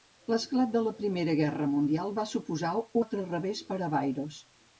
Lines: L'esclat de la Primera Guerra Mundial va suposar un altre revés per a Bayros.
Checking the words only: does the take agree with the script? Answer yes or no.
no